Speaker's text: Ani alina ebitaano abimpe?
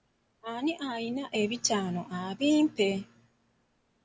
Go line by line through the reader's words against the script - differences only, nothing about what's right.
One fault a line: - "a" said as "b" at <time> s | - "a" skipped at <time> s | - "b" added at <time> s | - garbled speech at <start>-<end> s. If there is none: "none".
none